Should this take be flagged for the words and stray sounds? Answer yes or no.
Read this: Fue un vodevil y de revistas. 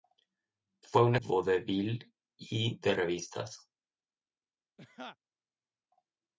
yes